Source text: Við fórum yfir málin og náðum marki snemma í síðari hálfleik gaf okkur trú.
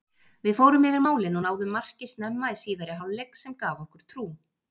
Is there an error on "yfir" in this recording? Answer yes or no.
no